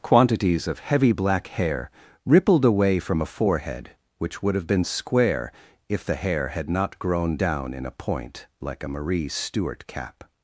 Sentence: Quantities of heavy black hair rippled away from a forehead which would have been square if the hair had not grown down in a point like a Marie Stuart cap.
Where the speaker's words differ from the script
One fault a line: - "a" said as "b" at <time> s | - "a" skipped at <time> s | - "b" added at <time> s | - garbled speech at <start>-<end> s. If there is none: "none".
none